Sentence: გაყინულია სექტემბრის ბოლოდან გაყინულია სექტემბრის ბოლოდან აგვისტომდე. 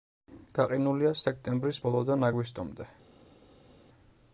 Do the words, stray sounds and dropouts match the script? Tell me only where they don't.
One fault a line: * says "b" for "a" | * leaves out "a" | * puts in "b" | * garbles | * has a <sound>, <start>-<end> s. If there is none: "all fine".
* leaves out "გაყინულია სექტემბრის ბოლოდან"